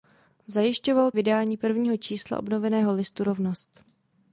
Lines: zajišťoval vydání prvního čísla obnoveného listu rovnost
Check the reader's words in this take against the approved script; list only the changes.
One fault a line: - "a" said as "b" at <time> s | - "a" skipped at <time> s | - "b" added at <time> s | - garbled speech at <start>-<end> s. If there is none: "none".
none